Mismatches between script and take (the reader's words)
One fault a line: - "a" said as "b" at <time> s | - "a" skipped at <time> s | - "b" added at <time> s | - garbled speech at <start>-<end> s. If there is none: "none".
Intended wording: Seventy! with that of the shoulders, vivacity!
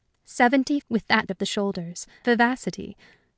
none